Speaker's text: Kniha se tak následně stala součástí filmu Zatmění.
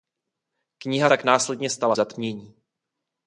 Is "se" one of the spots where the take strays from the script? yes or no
yes